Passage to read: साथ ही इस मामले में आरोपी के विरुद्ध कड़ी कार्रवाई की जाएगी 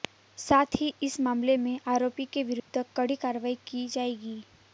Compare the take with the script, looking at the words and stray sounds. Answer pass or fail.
fail